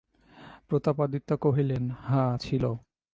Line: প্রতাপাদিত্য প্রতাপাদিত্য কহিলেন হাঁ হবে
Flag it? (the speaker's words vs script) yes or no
yes